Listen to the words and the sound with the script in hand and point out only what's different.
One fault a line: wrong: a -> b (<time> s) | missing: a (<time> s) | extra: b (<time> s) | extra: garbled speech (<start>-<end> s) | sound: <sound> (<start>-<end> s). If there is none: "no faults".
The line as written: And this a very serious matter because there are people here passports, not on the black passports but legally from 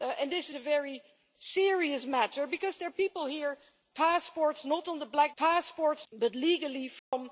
sound: dropout (7.0-7.1 s)